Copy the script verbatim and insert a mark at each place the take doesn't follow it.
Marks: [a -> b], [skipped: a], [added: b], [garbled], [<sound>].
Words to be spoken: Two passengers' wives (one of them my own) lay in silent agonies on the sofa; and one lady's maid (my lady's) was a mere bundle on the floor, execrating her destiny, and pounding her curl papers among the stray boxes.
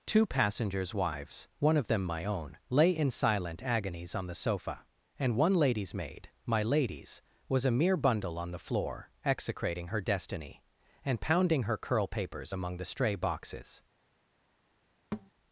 Two passengers' wives (one of them my own) lay in silent agonies on the sofa; and one lady's maid (my lady's) was a mere bundle on the floor, execrating her destiny, and pounding her curl papers among the stray boxes. [thud]